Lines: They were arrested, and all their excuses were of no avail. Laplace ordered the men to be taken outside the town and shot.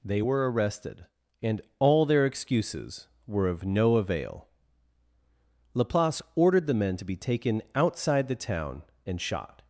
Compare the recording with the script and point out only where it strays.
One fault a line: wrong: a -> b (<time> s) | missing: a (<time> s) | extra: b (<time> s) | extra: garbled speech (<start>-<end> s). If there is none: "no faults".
no faults